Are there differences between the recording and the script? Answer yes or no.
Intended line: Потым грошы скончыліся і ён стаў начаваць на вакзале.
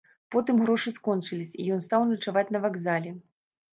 no